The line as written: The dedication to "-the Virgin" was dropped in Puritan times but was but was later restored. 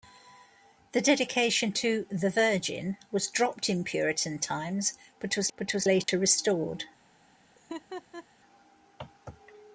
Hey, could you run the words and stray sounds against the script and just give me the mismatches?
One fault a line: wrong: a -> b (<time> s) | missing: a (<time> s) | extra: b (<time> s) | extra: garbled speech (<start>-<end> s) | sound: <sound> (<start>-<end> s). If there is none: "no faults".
sound: dropout (6.0-6.1 s)
sound: laugh (7.5-8.3 s)